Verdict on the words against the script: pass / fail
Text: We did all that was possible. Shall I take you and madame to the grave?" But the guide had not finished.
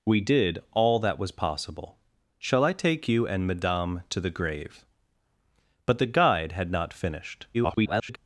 fail